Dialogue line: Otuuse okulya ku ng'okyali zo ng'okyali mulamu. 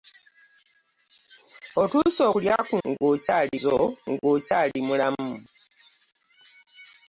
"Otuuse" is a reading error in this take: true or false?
false